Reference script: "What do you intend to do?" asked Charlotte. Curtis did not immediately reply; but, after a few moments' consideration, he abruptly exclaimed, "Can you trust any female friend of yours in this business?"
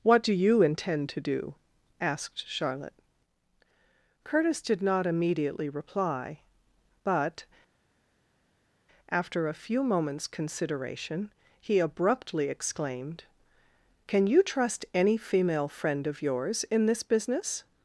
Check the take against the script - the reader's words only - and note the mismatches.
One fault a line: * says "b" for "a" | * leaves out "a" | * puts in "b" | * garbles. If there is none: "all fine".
all fine